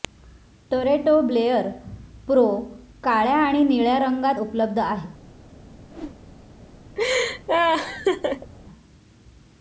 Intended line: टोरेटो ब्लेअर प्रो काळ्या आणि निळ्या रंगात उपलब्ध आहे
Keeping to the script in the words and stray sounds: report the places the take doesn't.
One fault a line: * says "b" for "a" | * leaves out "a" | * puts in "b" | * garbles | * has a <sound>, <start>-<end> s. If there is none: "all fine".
* has a whoosh, 5.9-6.2 s
* has a laugh, 7.0-8.5 s